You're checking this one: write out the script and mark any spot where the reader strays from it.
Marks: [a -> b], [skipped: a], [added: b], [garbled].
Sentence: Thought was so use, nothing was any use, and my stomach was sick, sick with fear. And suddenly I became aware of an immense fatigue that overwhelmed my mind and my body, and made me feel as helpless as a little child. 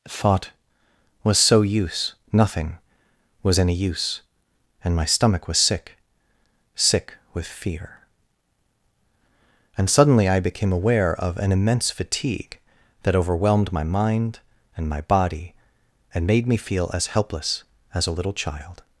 Thought was so use, nothing was any use, and my stomach was sick, sick with fear. And suddenly I became aware of an immense fatigue that overwhelmed my mind and my body, and made me feel as helpless as a little child.